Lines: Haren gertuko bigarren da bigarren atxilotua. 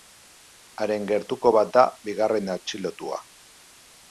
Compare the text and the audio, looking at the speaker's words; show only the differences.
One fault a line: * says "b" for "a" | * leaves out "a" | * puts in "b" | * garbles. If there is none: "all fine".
* says "bat" for "bigarren"